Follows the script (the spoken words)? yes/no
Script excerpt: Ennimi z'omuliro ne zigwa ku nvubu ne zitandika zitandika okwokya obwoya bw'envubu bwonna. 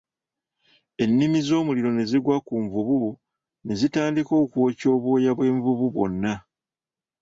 no